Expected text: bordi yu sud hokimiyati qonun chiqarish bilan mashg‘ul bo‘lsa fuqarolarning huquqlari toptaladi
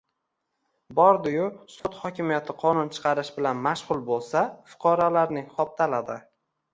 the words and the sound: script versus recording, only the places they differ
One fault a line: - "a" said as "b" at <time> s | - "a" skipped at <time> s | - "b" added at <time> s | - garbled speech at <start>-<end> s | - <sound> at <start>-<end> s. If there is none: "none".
- dropout at 1.8-1.8 s
- "huquqlari" skipped at 5.5 s